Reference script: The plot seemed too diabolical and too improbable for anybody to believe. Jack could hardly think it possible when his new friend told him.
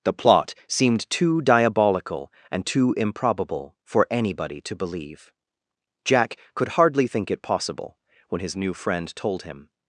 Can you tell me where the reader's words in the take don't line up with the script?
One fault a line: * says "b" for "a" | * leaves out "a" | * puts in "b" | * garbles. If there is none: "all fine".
all fine